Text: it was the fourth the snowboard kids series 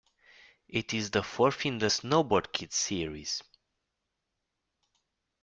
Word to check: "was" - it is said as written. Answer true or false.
false